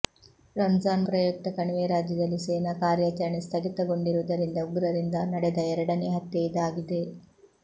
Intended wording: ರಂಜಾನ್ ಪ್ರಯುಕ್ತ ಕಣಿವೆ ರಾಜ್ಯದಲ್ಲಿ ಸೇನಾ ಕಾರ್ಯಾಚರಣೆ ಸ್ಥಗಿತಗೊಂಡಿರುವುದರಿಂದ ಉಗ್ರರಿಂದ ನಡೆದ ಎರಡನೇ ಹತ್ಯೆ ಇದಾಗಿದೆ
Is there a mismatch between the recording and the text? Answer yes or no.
no